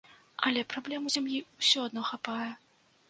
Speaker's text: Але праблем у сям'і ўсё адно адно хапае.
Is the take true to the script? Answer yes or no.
no